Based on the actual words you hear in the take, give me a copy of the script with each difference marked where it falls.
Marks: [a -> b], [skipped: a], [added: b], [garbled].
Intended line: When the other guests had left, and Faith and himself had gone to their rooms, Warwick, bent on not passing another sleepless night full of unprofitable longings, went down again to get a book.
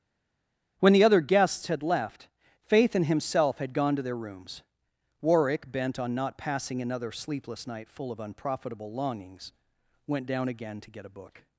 When the other guests had left, [skipped: and] Faith and himself had gone to their rooms, Warwick, bent on not passing another sleepless night full of unprofitable longings, went down again to get a book.